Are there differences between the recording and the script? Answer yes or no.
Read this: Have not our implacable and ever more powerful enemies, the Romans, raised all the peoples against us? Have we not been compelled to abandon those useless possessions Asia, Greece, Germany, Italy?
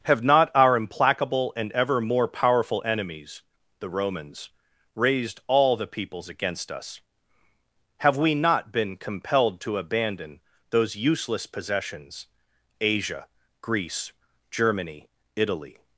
no